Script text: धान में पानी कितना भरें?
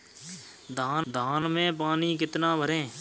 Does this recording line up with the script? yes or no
no